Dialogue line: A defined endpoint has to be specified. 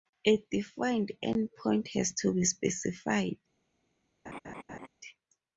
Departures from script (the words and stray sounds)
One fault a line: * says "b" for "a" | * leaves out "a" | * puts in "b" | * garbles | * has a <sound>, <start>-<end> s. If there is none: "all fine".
* has a laugh, 4.3-4.9 s